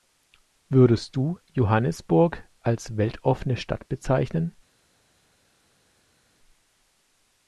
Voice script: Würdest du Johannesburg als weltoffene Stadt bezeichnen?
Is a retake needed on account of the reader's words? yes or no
no